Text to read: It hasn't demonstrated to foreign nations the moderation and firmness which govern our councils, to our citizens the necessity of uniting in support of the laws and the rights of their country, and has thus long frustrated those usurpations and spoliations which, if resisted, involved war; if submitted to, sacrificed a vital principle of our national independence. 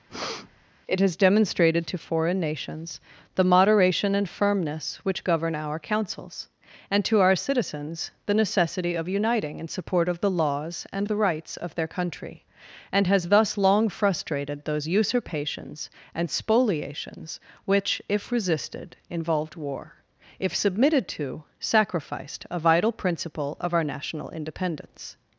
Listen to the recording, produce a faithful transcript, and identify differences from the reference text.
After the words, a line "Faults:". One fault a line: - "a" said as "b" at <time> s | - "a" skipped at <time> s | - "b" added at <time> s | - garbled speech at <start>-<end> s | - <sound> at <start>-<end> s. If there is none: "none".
It has demonstrated to foreign nations the moderation and firmness which govern our councils, and to our citizens the necessity of uniting in support of the laws and the rights of their country, and has thus long frustrated those usurpations and spoliations which, if resisted, involved war; if submitted to, sacrificed a vital principle of our national independence.
Faults:
- breath at 0.1-0.7 s
- "hasn't" said as "has" at 1.0 s
- "and" added at 6.9 s